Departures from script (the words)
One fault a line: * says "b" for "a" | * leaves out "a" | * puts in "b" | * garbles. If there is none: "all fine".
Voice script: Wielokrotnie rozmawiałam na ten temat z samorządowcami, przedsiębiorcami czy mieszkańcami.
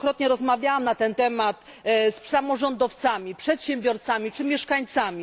all fine